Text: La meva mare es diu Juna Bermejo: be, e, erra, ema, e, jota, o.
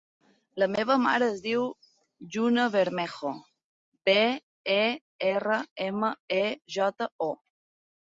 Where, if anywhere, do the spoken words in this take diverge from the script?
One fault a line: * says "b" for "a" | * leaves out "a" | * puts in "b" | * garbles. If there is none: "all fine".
all fine